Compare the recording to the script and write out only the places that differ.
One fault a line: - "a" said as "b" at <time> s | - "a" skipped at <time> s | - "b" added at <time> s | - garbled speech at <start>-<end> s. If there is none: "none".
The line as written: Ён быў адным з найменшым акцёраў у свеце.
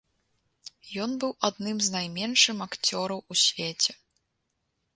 none